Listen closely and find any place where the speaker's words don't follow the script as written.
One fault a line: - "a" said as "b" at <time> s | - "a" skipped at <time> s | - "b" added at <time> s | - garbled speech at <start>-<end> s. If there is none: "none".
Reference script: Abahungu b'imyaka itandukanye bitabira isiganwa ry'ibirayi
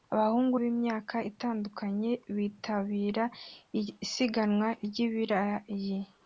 none